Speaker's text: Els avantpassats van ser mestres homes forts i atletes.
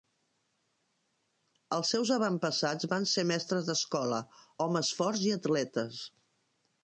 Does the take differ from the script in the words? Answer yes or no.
yes